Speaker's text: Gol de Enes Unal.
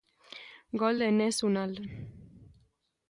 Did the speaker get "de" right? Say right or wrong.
right